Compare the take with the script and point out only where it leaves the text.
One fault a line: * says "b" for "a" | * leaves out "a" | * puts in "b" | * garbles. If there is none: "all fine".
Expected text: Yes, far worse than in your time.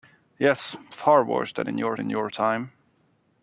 * puts in "in your"